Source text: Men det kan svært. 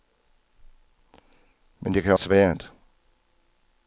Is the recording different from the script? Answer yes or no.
no